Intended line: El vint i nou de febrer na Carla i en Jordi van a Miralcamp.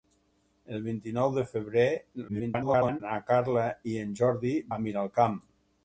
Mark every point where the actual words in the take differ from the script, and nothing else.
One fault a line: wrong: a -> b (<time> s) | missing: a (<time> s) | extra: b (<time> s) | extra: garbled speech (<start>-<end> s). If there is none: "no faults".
extra: garbled speech (2.3-3.0 s)
missing: van (4.6 s)